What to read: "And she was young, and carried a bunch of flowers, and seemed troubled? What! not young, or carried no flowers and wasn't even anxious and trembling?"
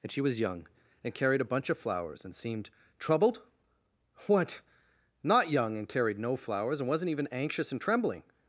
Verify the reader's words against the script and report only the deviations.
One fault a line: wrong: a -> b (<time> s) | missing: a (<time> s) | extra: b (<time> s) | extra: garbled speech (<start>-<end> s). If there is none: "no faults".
wrong: or -> and (5.8 s)